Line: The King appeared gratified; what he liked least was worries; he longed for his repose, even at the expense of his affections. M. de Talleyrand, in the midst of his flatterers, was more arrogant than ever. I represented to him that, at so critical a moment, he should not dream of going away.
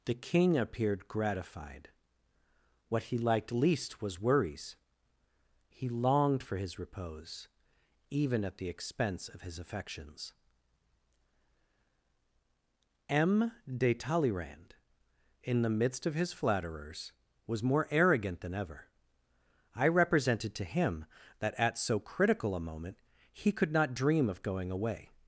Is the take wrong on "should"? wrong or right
wrong